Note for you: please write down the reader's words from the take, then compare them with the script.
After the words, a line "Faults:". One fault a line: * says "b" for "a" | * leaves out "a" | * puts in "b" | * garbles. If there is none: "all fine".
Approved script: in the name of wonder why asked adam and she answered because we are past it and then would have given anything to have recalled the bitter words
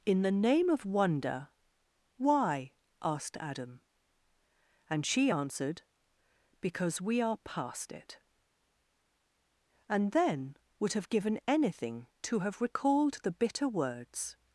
in the name of wonder why asked adam and she answered because we are past it and then would have given anything to have recalled the bitter words
Faults:
all fine